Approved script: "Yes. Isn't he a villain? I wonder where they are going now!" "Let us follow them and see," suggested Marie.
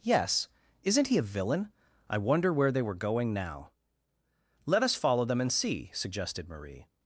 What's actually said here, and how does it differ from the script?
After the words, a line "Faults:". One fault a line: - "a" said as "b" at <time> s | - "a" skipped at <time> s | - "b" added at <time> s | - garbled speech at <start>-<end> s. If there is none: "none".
"Yes. Isn't he a villain? I wonder where they were going now!" "Let us follow them and see," suggested Marie.
Faults:
- "are" said as "were" at 2.8 s